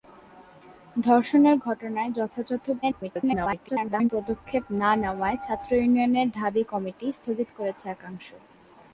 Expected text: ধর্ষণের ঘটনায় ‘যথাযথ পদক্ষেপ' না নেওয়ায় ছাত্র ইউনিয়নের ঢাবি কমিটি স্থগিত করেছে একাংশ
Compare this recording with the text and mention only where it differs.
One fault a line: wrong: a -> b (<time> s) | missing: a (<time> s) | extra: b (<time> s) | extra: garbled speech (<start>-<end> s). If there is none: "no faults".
extra: garbled speech (2.8-4.1 s)